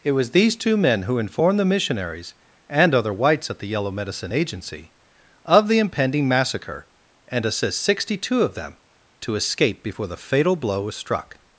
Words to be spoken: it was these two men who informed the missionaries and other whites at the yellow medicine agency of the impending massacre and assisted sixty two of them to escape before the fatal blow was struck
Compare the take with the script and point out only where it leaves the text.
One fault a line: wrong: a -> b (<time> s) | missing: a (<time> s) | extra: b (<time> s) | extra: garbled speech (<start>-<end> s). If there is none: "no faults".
wrong: assisted -> assist (7.4 s)